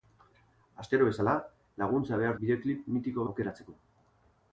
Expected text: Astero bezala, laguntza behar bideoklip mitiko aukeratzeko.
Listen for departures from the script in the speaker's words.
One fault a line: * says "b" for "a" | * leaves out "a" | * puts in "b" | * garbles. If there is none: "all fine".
all fine